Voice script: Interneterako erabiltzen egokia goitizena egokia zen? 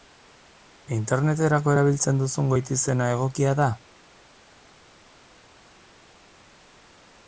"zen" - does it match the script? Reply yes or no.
no